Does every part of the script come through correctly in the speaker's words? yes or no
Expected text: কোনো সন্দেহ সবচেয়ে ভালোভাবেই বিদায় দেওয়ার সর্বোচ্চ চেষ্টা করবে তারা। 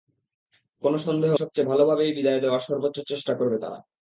yes